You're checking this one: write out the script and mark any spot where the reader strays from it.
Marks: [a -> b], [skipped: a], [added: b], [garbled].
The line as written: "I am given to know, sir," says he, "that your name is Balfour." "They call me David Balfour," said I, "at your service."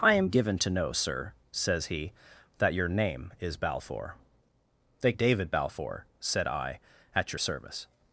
"I am given to know, sir," says he, "that your name is Balfour." "They [skipped: call me] David Balfour," said I, "at your service."